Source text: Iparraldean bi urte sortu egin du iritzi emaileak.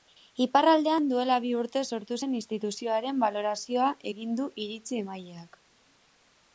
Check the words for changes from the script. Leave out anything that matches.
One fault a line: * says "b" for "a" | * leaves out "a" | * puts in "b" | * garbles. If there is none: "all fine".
* puts in "duela"
* puts in "zen instituzioaren balorazioa"